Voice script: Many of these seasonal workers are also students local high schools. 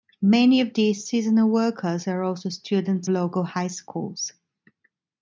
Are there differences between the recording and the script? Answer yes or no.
no